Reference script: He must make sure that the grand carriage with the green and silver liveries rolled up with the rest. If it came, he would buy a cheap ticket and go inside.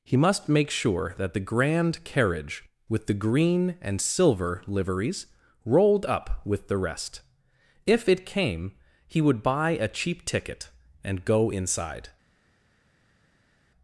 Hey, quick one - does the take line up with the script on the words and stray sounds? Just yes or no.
yes